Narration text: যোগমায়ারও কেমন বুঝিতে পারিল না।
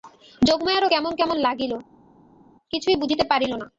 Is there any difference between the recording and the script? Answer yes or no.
yes